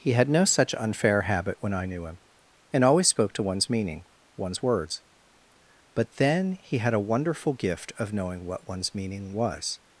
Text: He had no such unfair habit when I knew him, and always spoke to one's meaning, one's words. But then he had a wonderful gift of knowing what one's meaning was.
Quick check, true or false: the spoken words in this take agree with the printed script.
true